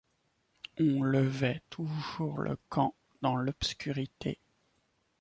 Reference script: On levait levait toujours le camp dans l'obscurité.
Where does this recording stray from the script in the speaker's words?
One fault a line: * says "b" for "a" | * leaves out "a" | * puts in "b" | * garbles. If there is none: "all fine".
* leaves out "levait"